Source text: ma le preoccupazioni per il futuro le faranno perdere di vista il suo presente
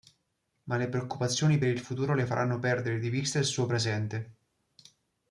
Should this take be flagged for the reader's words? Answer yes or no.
no